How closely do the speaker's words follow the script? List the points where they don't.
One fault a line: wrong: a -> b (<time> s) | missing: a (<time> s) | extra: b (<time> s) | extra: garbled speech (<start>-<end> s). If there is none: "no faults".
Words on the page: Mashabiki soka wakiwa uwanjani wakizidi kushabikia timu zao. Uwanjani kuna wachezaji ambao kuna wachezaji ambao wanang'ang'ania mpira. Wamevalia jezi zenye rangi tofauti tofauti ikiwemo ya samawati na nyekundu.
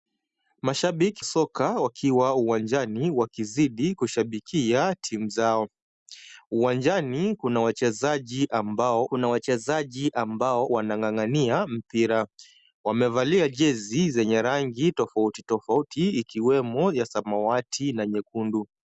no faults